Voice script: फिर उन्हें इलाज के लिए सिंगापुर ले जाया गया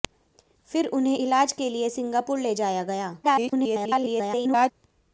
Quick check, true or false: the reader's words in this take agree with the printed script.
false